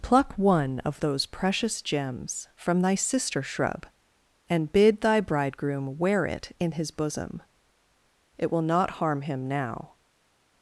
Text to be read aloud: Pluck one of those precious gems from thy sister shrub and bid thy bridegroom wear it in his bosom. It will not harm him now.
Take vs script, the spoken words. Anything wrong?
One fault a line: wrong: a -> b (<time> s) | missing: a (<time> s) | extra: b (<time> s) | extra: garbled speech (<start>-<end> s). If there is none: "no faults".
no faults